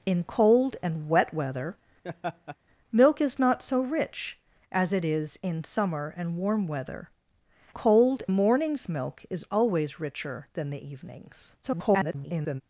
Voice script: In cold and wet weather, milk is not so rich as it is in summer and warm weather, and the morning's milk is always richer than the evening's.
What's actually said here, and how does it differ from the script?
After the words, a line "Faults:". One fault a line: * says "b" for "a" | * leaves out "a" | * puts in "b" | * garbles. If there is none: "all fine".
In cold and wet weather, milk is not so rich as it is in summer and warm weather, cold the morning's milk is always richer than the evening's. [garbled]
Faults:
* says "cold" for "and"
* garbles